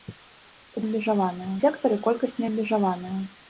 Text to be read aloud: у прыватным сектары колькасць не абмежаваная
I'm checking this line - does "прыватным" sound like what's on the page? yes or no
no